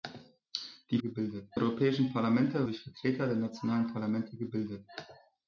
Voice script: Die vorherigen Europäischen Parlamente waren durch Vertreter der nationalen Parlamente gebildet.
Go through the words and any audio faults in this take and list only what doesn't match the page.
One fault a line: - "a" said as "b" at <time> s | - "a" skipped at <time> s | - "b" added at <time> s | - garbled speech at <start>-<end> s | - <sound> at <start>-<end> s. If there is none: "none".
- "vorherigen" said as "gebildet" at 1.0 s
- "waren" skipped at 2.7 s